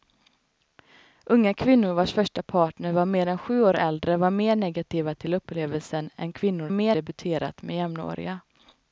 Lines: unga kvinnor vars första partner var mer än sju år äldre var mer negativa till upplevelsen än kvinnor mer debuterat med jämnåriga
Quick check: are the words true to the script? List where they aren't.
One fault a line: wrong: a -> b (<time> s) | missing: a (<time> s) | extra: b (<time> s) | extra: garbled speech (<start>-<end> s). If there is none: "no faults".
no faults